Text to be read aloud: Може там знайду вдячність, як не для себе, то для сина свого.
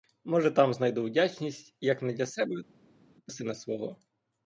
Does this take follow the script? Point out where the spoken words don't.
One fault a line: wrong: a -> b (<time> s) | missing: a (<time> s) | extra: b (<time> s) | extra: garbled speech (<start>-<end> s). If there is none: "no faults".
missing: для (3.3 s)